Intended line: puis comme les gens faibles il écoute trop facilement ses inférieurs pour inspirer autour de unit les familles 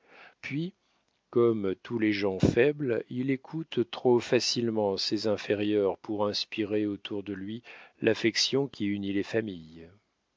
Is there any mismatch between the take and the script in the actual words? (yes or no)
yes